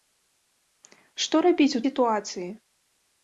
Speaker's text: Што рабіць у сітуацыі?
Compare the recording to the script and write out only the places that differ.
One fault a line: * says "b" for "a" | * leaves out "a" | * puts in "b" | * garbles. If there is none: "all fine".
all fine